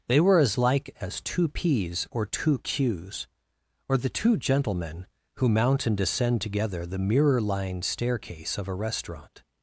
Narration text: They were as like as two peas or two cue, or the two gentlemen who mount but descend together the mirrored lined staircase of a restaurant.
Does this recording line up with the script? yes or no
no